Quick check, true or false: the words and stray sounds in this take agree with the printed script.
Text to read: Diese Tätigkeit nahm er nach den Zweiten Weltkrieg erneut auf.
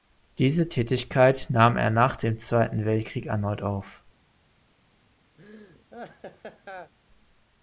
false